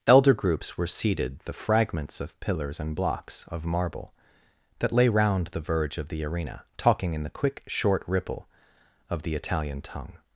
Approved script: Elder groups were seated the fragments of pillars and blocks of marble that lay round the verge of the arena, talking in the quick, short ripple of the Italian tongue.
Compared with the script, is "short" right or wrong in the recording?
right